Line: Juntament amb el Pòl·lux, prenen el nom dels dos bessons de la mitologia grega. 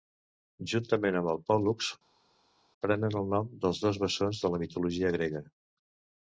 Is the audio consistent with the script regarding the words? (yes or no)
yes